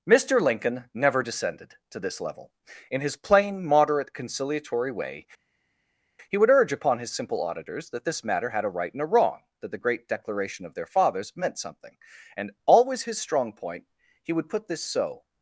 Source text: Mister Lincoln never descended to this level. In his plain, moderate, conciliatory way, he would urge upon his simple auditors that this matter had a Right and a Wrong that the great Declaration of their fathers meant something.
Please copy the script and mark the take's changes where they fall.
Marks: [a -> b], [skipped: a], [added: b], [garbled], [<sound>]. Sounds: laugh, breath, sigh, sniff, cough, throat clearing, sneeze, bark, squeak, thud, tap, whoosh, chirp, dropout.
Mister Lincoln never descended to this level. In his plain, moderate, conciliatory way, he would urge upon his simple auditors that this matter had a Right and a Wrong that the great Declaration of their fathers meant something. [added: And always his strong point he would put this so]